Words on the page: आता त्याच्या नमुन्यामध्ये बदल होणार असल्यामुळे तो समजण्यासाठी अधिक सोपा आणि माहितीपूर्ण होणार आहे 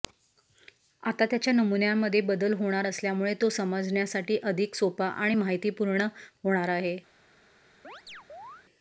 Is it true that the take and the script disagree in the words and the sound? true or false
true